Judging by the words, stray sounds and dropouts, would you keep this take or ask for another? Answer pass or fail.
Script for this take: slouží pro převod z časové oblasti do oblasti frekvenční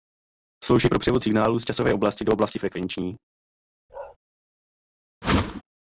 fail